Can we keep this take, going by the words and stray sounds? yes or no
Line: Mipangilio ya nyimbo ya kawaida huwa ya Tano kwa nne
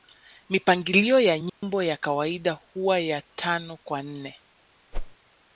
no